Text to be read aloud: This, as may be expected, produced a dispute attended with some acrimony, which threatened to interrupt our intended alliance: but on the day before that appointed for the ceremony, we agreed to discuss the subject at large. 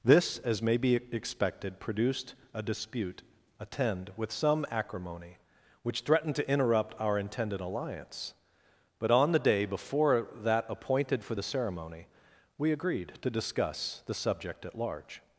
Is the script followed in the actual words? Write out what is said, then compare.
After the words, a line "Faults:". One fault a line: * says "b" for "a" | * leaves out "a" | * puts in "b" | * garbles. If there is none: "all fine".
This, as may be expected, produced a dispute attend with some acrimony, which threatened to interrupt our intended alliance: but on the day before that appointed for the ceremony, we agreed to discuss the subject at large.
Faults:
* says "attend" for "attended"